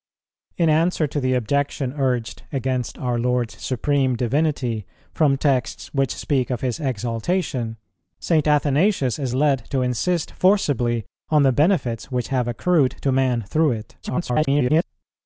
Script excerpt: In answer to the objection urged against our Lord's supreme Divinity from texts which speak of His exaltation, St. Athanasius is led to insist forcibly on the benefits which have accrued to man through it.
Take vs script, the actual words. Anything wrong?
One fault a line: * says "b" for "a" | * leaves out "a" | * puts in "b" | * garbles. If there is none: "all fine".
* garbles